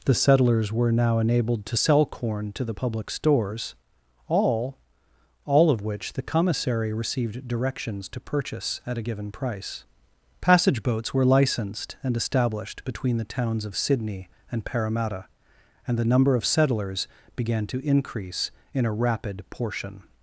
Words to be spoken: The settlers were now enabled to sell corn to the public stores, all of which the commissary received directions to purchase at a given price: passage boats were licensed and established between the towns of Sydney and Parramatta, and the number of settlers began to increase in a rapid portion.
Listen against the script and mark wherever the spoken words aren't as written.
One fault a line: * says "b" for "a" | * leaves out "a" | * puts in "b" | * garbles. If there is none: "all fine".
* puts in "all"